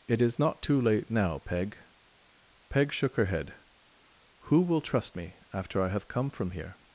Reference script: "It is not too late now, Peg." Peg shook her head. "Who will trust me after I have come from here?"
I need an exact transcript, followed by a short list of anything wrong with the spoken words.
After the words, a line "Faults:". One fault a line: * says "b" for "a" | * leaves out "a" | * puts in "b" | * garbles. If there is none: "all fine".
"It is not too late now, Peg." Peg shook her head. "Who will trust me after I have come from here?"
Faults:
all fine